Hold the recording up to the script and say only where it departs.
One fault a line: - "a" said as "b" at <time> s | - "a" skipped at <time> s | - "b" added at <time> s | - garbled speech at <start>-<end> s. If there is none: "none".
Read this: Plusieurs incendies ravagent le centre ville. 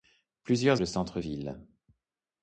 - "incendies ravagent" skipped at 0.8 s